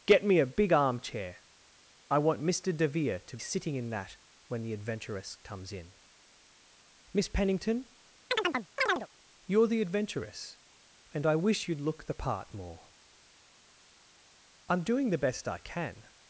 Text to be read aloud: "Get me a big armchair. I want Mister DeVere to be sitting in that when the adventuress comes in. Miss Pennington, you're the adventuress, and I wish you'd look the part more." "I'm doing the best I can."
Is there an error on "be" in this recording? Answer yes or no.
yes